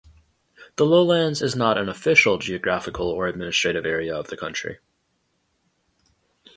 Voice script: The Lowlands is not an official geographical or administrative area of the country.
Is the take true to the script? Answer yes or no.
yes